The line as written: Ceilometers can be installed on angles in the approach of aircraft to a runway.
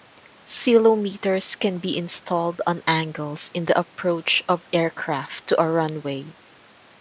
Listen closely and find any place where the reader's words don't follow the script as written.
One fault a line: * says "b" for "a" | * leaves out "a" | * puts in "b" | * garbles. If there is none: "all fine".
all fine